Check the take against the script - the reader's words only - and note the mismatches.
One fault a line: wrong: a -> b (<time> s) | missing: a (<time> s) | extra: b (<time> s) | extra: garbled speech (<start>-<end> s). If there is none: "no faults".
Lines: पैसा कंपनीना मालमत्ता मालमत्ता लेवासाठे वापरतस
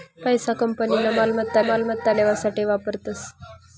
no faults